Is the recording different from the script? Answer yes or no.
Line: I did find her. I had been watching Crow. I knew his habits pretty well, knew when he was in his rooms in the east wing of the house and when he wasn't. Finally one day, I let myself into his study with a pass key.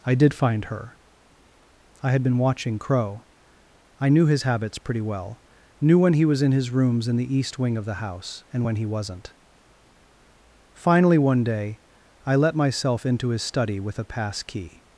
no